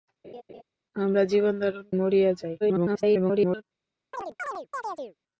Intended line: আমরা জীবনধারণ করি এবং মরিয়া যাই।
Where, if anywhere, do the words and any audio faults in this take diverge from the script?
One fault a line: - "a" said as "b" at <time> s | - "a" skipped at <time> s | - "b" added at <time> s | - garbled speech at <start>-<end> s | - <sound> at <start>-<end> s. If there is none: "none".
- laugh at 0.2-0.6 s
- "করি এবং" skipped at 1.9 s
- garbled speech at 2.6-3.6 s
- chirp at 4.1-5.2 s